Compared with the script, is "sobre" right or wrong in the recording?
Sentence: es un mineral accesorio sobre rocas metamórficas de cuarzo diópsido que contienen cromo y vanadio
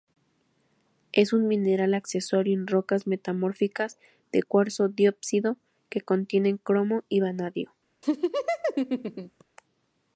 wrong